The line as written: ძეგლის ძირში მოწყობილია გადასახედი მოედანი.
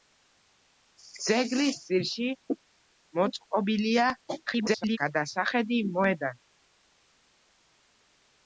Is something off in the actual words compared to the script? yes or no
yes